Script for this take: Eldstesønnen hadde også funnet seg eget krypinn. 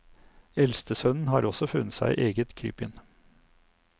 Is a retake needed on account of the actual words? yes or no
yes